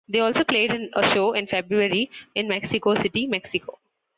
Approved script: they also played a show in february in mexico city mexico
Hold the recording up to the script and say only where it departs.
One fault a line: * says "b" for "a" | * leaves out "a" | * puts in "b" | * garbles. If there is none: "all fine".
all fine